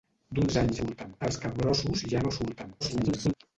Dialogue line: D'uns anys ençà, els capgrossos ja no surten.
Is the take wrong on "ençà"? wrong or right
wrong